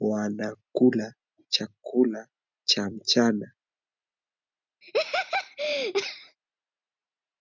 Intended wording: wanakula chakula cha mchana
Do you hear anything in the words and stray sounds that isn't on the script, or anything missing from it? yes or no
yes